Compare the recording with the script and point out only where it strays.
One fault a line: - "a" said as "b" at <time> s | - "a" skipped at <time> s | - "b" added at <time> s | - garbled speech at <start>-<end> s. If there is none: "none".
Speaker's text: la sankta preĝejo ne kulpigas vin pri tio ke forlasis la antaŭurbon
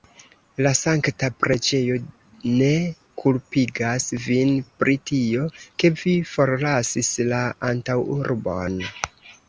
- "vi" added at 6.0 s